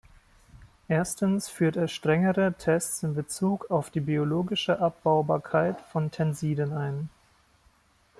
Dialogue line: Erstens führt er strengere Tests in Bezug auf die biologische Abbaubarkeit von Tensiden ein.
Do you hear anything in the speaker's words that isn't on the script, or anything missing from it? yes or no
no